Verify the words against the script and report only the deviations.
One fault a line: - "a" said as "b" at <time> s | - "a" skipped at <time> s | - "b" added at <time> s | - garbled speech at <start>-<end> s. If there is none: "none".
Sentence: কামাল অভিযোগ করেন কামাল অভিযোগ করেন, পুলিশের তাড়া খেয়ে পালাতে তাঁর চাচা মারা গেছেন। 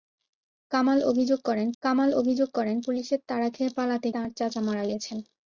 none